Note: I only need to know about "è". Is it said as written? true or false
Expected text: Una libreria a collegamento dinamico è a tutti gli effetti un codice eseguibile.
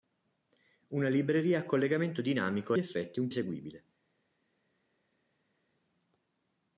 false